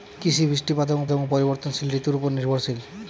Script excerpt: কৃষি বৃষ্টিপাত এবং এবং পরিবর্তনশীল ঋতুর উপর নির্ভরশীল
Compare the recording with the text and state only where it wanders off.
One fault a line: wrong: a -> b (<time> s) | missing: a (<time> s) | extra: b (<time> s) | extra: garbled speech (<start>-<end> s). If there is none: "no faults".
no faults